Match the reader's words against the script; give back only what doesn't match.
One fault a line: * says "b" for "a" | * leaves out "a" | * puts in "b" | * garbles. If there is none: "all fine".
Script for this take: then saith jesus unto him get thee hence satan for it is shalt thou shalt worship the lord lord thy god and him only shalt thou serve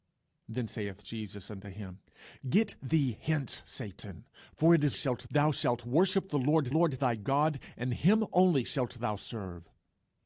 all fine